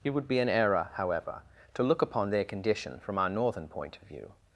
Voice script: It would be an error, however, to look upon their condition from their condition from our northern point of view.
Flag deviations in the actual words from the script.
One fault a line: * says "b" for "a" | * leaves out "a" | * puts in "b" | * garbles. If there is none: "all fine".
* leaves out "their condition from"